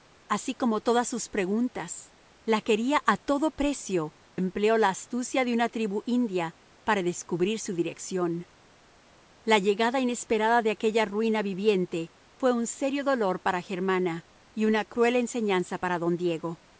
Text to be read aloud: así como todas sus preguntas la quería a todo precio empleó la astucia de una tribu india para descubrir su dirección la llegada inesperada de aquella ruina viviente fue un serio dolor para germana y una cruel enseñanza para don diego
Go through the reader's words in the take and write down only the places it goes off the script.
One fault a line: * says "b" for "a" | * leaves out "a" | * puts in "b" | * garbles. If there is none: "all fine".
all fine